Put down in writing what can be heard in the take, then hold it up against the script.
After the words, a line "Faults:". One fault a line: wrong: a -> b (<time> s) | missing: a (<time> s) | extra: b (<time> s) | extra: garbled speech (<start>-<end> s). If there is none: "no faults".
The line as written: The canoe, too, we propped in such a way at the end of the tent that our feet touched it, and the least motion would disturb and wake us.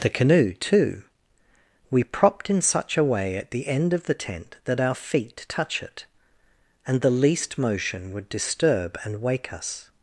The canoe, too, we propped in such a way at the end of the tent that our feet touch it, and the least motion would disturb and wake us.
Faults:
wrong: touched -> touch (5.5 s)